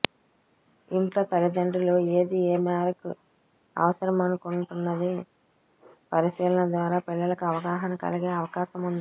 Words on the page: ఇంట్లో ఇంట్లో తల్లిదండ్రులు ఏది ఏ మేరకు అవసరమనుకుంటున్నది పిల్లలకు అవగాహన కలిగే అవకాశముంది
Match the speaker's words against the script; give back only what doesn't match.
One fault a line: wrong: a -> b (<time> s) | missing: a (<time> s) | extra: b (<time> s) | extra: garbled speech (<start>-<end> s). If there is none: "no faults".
missing: ఇంట్లో (1.2 s)
extra: పరిశీలన ద్వారా (6.1 s)